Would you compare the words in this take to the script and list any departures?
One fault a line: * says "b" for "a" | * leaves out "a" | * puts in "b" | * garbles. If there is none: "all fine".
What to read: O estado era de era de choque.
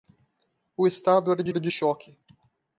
all fine